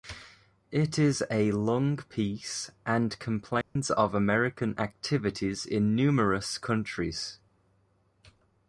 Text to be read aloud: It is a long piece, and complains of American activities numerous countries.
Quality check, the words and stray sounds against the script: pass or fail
fail